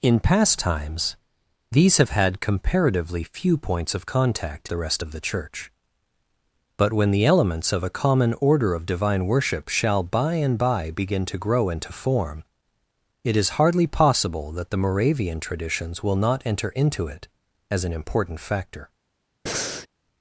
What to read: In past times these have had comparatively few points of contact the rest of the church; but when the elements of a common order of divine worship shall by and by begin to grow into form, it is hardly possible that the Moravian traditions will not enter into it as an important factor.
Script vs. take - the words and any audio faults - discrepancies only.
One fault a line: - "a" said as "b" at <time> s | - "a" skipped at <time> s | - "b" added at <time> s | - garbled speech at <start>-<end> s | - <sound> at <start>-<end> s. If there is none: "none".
- breath at 19.5-19.9 s